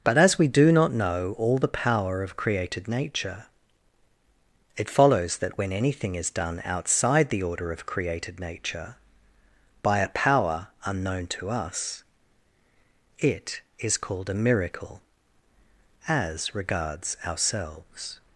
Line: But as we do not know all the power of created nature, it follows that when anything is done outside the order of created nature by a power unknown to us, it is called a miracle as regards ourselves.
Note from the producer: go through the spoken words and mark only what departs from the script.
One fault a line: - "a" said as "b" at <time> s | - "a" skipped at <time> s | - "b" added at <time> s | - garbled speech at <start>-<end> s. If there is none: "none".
none